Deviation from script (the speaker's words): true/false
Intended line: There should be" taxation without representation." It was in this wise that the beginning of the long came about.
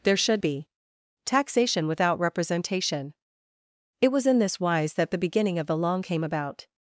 false